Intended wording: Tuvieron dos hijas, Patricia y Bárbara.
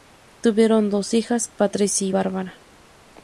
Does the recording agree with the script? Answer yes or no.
yes